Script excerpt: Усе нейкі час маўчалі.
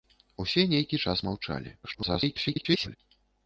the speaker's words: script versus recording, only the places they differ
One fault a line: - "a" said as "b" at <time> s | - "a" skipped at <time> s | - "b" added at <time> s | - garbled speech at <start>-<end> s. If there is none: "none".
- garbled speech at 1.8-3.0 s